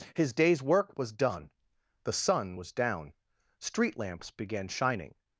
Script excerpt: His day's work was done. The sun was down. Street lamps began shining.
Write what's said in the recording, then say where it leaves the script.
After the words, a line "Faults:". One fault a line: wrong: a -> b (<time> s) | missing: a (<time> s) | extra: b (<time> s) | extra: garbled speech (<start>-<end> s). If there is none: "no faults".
His day's work was done. The sun was down. Street lamps began shining.
Faults:
no faults